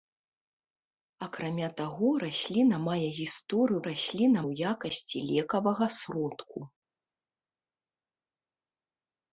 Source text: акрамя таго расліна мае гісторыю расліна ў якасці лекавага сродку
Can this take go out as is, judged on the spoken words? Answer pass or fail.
pass